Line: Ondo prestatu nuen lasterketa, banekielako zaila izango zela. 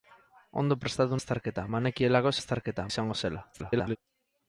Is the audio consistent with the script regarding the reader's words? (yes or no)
no